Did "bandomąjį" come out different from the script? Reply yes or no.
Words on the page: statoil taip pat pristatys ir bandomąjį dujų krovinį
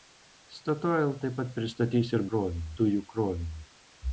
yes